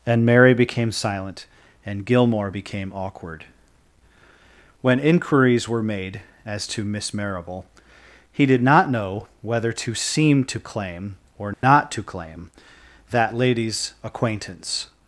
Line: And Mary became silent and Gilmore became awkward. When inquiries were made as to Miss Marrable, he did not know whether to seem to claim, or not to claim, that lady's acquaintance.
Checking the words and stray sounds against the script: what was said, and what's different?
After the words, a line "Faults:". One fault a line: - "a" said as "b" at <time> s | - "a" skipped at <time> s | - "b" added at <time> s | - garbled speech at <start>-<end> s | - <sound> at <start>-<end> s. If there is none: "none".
And Mary became silent and Gilmore became awkward. When inquiries were made as to Miss Marrable, he did not know whether to seem to claim, or not to claim, that lady's acquaintance.
Faults:
- dropout at 11.5-11.6 s